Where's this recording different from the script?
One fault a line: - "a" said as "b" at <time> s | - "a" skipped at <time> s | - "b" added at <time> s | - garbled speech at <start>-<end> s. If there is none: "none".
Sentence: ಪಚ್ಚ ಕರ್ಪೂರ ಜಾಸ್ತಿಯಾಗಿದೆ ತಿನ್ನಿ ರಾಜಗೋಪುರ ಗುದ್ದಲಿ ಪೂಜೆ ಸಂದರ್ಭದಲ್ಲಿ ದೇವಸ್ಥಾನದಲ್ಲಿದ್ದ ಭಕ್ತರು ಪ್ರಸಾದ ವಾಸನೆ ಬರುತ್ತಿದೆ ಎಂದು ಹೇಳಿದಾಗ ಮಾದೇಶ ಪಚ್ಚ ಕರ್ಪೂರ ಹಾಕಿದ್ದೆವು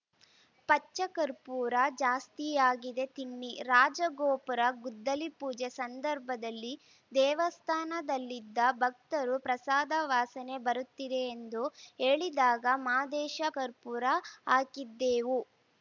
- "ಪಚ್ಚ" skipped at 13.4 s